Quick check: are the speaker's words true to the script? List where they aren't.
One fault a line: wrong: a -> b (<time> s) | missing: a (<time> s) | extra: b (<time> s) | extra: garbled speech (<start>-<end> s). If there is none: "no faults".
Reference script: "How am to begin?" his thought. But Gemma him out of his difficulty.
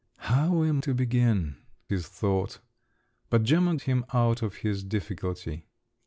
no faults